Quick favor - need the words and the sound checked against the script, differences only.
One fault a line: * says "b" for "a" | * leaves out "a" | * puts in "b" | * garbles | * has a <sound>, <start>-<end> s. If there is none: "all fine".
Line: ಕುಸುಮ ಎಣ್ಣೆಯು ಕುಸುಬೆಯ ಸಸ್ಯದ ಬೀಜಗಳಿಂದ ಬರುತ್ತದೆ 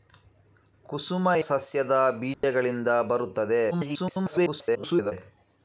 * leaves out "ಎಣ್ಣೆಯು ಕುಸುಬೆಯ"
* has a dropout, 2.3-2.4 s
* garbles